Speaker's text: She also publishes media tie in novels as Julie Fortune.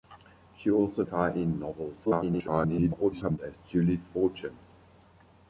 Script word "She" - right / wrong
right